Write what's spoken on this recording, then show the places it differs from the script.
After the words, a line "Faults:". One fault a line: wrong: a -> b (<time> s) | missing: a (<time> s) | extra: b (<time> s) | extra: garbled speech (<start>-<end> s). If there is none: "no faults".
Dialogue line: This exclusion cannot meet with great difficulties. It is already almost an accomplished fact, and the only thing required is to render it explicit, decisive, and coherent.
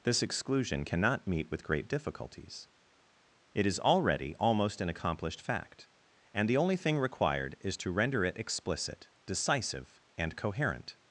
This exclusion cannot meet with great difficulties. It is already almost an accomplished fact, and the only thing required is to render it explicit, decisive, and coherent.
Faults:
no faults